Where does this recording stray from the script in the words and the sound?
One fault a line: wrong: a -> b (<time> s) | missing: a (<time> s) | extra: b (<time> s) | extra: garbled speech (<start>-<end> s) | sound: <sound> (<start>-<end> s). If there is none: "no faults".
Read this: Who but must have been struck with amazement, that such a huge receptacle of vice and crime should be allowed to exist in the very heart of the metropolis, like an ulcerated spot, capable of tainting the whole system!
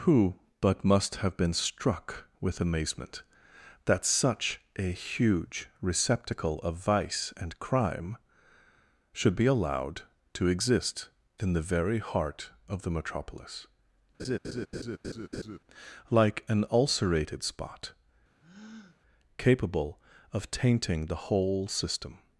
sound: laugh (14.2-15.6 s)
sound: breath (18.4-19.0 s)